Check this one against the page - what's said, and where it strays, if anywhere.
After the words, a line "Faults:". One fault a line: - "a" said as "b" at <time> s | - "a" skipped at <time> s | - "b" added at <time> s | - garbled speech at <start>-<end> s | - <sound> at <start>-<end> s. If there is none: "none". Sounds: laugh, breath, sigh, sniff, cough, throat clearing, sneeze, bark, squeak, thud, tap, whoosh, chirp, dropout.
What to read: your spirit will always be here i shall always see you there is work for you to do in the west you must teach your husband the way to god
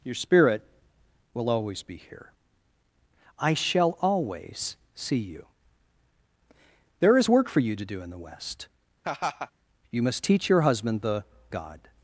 your spirit will always be here i shall always see you there is work for you to do in the west you must teach your husband the god
Faults:
- laugh at 9.0-9.5 s
- "way to" skipped at 11.2 s